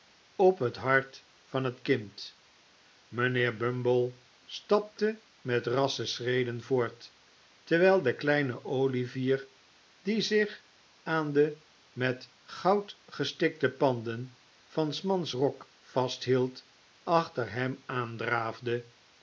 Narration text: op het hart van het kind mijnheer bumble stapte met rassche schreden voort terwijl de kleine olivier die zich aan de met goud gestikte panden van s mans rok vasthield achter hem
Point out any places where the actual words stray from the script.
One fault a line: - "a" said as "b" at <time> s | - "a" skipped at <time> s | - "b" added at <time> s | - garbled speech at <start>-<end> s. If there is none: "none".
none